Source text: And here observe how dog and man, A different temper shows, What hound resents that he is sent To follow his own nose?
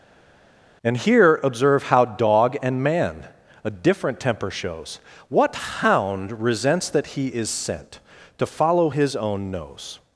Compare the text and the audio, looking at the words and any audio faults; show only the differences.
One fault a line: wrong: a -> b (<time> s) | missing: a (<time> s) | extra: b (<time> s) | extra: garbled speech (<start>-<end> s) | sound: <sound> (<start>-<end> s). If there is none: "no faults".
no faults